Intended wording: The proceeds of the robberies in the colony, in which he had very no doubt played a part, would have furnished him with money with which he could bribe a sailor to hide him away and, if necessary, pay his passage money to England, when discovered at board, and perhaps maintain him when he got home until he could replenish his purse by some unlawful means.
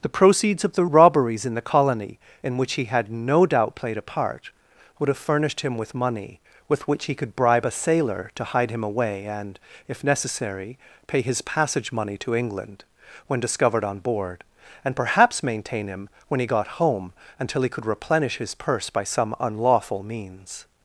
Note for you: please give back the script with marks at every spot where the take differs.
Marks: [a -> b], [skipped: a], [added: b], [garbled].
The proceeds of the robberies in the colony, in which he had [skipped: very] no doubt played a part, would have furnished him with money with which he could bribe a sailor to hide him away and, if necessary, pay his passage money to England, when discovered [at -> on] board, and perhaps maintain him when he got home until he could replenish his purse by some unlawful means.